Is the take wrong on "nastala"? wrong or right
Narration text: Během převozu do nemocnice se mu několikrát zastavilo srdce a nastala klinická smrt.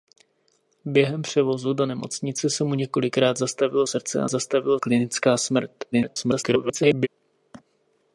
wrong